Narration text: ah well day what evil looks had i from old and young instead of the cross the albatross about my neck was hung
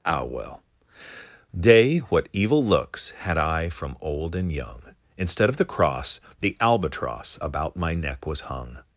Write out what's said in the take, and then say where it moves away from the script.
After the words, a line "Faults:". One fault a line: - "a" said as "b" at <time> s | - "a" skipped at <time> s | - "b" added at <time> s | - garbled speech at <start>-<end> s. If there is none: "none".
ah well day what evil looks had i from old and young instead of the cross the albatross about my neck was hung
Faults:
none